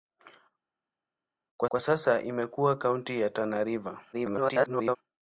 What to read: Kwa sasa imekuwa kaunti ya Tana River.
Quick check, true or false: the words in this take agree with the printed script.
false